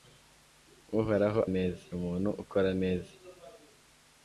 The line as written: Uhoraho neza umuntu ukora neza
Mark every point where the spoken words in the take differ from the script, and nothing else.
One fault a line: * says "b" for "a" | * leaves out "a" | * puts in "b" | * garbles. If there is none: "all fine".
all fine